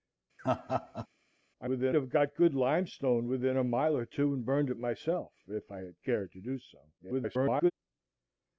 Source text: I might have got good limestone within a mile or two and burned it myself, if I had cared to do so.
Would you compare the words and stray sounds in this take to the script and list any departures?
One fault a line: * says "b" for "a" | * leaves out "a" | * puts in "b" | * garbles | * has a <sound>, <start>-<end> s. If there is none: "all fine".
* has a laugh, 0.4-1.1 s
* says "within" for "might"
* garbles